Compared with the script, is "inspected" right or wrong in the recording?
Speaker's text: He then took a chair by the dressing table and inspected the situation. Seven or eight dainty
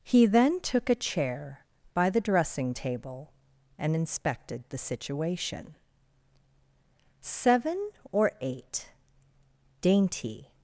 right